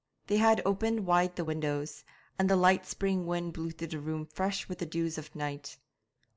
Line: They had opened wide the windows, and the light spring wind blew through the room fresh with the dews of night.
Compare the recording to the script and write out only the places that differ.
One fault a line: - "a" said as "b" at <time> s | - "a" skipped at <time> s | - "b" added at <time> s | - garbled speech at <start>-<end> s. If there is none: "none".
none